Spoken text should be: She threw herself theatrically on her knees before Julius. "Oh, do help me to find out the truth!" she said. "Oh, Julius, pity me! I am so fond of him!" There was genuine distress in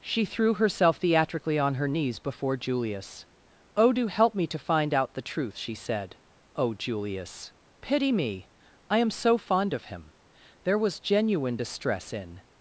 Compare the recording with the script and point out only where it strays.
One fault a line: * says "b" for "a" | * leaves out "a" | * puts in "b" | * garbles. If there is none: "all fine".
all fine